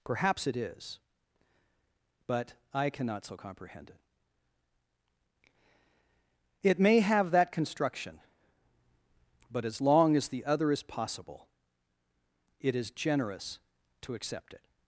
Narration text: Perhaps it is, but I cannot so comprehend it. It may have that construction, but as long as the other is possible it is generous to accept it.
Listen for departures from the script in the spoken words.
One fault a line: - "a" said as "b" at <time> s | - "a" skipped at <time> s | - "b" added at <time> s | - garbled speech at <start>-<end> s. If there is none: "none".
none